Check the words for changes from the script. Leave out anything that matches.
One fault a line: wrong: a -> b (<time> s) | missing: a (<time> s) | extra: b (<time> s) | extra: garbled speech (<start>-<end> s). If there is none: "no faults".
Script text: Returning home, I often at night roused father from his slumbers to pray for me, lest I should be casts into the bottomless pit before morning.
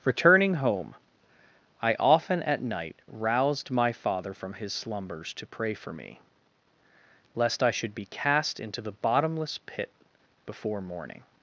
extra: my (3.7 s)
wrong: casts -> cast (8.1 s)